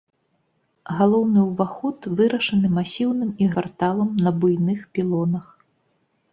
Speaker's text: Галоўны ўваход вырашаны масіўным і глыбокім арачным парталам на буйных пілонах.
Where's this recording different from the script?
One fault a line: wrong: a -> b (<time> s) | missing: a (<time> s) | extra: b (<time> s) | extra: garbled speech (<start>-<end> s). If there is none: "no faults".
missing: глыбокім арачным (3.5 s)